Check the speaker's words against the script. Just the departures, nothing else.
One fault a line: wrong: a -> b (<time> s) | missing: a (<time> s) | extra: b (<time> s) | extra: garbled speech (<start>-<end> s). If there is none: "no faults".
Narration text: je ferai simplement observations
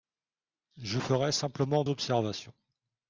no faults